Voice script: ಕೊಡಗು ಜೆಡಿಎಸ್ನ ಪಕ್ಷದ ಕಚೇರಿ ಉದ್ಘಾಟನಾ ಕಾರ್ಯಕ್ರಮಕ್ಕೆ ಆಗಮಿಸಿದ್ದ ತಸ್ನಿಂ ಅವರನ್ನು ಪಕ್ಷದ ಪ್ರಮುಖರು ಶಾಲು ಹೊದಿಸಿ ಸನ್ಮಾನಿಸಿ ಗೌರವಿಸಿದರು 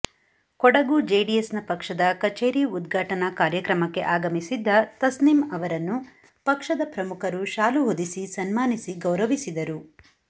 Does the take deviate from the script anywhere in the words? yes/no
no